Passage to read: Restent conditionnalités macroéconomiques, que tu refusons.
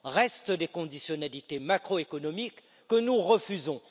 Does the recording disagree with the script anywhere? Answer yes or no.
yes